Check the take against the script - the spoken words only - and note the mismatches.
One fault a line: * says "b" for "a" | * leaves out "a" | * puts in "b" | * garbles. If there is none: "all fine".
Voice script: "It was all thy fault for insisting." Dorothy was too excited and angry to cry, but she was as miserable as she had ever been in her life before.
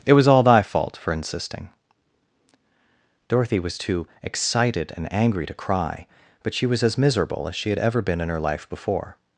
all fine